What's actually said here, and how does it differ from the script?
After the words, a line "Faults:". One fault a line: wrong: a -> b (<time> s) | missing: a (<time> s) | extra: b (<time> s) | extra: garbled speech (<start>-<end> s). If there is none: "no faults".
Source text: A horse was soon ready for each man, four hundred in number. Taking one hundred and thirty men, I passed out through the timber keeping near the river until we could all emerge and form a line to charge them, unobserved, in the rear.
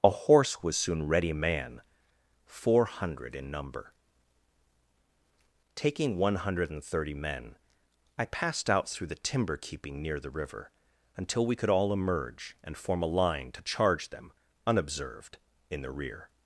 A horse was soon ready man, four hundred in number. Taking one hundred and thirty men, I passed out through the timber keeping near the river until we could all emerge and form a line to charge them, unobserved, in the rear.
Faults:
missing: for each (1.3 s)